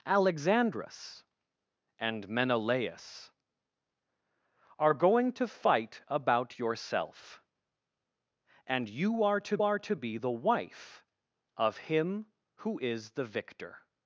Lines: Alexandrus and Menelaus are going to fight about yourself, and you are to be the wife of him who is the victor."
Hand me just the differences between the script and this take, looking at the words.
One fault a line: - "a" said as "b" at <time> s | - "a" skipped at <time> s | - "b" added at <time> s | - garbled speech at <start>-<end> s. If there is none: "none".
- "are to" added at 9.6 s